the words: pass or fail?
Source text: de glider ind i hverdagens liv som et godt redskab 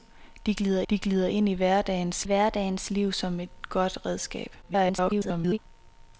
fail